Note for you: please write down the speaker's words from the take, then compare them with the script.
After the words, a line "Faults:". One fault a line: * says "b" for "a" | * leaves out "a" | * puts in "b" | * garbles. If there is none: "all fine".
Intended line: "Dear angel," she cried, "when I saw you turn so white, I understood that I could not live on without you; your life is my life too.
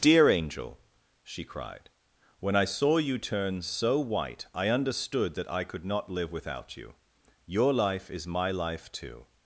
"Dear angel," she cried, "when I saw you turn so white, I understood that I could not live without you; your life is my life too.
Faults:
* leaves out "on"